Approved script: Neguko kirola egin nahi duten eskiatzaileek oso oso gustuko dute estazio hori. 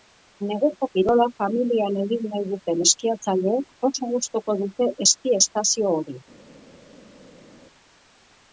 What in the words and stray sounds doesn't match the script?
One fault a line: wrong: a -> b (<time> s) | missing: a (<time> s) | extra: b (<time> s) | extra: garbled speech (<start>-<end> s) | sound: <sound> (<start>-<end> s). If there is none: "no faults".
extra: familian (1.4 s)
missing: oso (4.1 s)
extra: eski (5.1 s)